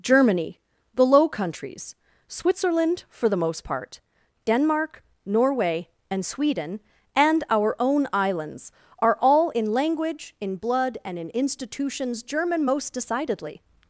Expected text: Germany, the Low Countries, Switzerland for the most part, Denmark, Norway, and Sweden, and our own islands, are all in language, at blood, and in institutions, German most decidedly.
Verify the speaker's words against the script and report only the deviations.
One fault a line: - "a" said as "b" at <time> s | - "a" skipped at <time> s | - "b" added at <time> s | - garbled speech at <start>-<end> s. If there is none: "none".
- "at" said as "in" at 10.4 s